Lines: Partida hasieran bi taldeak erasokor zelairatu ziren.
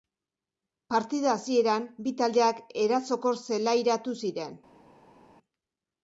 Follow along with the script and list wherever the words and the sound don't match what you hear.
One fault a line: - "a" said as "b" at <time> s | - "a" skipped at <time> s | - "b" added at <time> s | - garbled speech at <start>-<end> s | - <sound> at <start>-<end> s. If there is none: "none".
none